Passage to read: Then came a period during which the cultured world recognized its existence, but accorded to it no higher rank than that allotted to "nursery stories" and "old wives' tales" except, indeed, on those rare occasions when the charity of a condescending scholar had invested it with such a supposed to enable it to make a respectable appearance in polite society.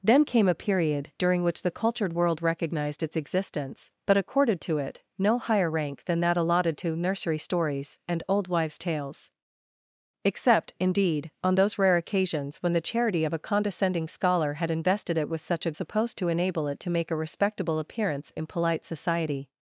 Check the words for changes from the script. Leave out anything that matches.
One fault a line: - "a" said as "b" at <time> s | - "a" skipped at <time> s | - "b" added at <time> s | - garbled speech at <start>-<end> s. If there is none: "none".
none